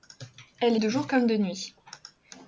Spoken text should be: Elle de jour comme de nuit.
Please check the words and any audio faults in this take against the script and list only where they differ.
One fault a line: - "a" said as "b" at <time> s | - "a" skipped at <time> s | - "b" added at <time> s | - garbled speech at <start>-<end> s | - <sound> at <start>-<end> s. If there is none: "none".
none